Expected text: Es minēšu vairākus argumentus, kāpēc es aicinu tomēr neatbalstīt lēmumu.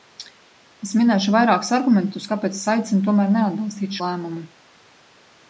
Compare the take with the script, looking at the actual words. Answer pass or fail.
pass